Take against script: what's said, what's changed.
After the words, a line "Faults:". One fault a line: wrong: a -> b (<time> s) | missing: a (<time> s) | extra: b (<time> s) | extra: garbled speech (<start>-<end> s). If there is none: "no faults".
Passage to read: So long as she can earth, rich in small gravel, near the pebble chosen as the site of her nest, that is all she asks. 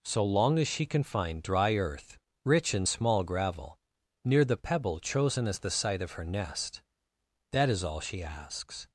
So long as she can find dry earth, rich in small gravel, near the pebble chosen as the site of her nest, that is all she asks.
Faults:
extra: find dry (1.0 s)